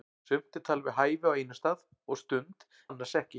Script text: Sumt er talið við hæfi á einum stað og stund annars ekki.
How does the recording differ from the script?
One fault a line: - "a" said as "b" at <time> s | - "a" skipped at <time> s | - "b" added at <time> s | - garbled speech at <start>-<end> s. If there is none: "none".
none